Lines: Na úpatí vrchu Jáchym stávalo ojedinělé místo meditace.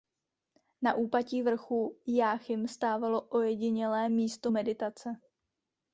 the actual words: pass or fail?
pass